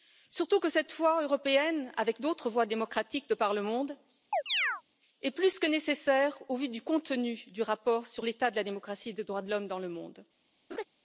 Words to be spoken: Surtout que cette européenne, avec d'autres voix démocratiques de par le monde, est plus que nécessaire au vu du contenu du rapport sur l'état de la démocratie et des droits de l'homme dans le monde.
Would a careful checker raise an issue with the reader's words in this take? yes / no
yes